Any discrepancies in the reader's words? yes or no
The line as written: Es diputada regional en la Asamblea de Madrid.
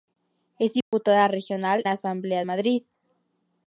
yes